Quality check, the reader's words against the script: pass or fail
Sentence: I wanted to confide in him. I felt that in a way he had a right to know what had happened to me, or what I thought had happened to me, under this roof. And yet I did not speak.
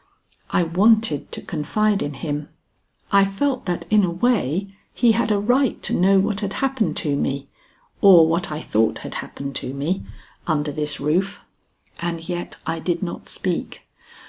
pass